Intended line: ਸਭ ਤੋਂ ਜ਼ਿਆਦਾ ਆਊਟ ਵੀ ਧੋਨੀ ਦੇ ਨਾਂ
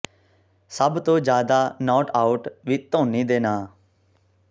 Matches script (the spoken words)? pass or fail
fail